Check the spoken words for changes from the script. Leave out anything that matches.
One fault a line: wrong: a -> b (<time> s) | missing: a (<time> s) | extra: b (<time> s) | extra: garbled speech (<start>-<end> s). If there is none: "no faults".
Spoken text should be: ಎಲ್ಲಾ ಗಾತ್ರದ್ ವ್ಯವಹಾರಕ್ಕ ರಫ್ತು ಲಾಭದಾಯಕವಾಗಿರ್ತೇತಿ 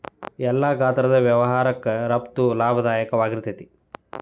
no faults